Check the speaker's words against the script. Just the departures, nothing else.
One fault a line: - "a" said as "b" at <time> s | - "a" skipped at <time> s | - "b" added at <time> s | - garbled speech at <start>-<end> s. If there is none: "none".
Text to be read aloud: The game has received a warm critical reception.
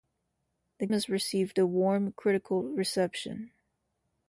- "game" skipped at 0.9 s